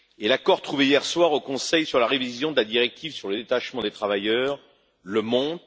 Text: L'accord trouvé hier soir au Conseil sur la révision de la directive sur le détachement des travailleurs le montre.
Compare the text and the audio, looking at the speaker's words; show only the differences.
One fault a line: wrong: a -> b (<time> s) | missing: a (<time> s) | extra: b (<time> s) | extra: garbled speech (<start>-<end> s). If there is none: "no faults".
no faults